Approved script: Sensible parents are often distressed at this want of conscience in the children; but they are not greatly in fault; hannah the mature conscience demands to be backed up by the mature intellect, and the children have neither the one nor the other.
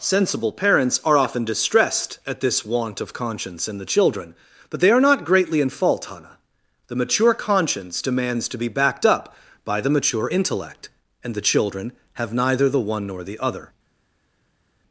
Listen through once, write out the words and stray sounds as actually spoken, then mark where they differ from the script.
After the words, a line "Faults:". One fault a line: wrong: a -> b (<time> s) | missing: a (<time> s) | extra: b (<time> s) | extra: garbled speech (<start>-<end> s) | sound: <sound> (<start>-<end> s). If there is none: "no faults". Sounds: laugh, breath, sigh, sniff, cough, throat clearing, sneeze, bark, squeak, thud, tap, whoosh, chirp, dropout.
Sensible parents are often distressed at this want of conscience in the children; but they are not greatly in fault; hannah the mature conscience demands to be backed up by the mature intellect, and the children have neither the one nor the other.
Faults:
no faults